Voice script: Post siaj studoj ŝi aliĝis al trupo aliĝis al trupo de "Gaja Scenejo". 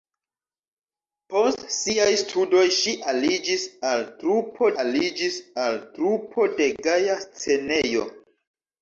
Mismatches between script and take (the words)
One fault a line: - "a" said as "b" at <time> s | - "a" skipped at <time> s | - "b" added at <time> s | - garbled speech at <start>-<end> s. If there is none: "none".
none